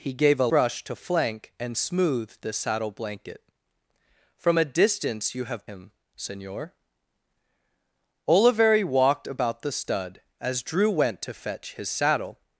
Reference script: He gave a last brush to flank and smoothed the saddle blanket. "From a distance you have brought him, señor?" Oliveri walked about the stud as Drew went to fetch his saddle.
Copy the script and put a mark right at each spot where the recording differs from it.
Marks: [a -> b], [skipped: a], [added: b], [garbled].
He gave a [skipped: last] brush to flank and smoothed the saddle blanket. "From a distance you have [skipped: brought] him, señor?" Oliveri walked about the stud as Drew went to fetch his saddle.